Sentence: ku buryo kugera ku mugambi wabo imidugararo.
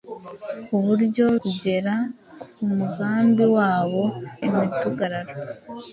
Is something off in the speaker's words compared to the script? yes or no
no